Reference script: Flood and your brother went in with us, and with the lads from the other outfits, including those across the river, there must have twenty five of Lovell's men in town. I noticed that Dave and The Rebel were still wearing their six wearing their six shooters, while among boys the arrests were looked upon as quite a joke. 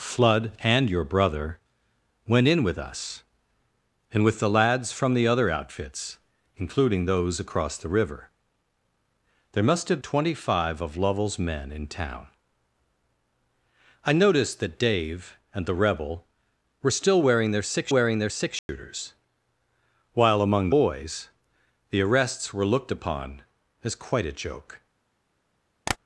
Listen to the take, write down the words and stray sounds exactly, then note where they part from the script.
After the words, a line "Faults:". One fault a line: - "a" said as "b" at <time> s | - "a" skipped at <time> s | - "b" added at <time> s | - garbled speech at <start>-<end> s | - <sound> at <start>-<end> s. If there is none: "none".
Flood and your brother went in with us, and with the lads from the other outfits, including those across the river, there must have twenty five of Lovell's men in town. I noticed that Dave and The Rebel were still wearing their six wearing their six shooters, while among boys the arrests were looked upon as quite a joke.
Faults:
- dropout at 18.6-18.7 s
- tap at 25.9-26.0 s